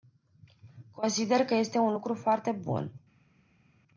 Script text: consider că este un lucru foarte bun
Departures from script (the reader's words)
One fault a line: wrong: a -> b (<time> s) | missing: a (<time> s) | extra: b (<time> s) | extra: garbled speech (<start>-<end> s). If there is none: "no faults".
no faults